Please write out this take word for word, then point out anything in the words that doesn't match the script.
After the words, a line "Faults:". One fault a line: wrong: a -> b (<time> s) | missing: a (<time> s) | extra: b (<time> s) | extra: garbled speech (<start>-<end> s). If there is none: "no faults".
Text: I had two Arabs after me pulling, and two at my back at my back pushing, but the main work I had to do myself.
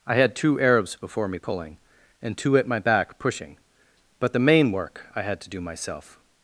I had two Arabs before me pulling, and two at my back pushing, but the main work I had to do myself.
Faults:
wrong: after -> before (1.0 s)
missing: at my back (3.2 s)